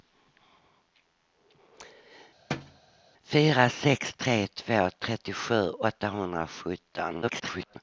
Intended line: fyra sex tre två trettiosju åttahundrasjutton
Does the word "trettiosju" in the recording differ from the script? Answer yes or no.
no